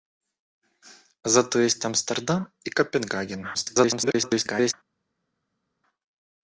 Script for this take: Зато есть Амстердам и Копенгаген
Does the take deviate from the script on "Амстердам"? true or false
false